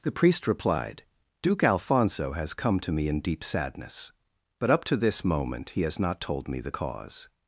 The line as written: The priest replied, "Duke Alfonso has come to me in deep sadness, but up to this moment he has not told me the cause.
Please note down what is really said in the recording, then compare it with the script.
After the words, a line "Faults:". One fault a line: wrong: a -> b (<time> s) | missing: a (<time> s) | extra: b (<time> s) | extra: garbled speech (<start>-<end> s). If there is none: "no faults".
The priest replied, "Duke Alfonso has come to me in deep sadness, but up to this moment he has not told me the cause.
Faults:
no faults